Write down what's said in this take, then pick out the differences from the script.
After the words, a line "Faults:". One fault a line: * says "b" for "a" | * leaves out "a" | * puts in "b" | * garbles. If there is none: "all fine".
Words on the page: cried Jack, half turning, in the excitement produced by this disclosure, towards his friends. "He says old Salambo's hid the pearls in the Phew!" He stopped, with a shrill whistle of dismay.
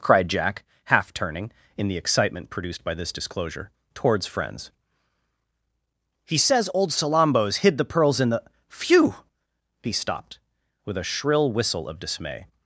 cried Jack, half turning, in the excitement produced by this disclosure, towards friends. "He says old Salambo's hid the pearls in the Phew!" He stopped, with a shrill whistle of dismay.
Faults:
* leaves out "his"